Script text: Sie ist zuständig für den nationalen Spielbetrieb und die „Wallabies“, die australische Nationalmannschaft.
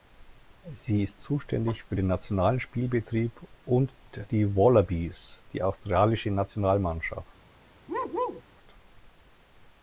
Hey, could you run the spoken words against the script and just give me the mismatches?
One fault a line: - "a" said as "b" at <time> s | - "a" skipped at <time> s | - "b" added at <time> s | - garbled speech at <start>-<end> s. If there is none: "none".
none